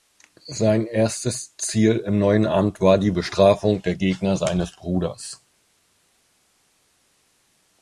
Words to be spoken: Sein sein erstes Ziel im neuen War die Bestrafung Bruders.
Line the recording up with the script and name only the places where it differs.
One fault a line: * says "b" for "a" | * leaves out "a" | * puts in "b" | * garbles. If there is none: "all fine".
* leaves out "sein"
* puts in "Amt"
* puts in "der Gegner seines"